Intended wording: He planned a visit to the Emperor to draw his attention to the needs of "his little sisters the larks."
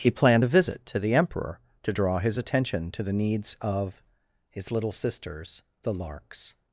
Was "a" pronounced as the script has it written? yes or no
yes